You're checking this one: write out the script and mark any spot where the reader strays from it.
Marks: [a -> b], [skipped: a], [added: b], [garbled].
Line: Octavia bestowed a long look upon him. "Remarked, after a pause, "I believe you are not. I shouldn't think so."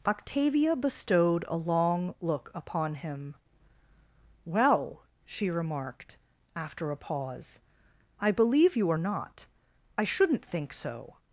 Octavia bestowed a long look upon him. [added: Well she] "Remarked, after a pause, "I believe you are not. I shouldn't think so."